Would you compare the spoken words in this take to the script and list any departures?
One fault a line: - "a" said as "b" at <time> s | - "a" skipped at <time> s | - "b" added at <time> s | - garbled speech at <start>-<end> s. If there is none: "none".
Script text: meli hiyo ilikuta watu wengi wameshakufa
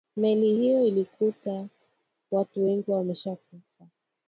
none